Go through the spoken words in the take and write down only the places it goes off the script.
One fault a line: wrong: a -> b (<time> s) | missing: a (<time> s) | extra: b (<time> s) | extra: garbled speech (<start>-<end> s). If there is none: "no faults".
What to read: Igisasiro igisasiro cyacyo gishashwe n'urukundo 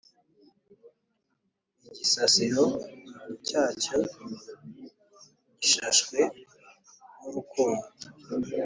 missing: igisasiro (2.6 s)